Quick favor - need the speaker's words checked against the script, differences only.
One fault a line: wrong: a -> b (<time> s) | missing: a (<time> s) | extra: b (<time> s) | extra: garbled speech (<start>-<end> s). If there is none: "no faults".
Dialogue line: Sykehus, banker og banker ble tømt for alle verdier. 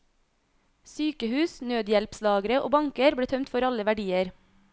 wrong: banker -> nødhjelpslagre (1.7 s)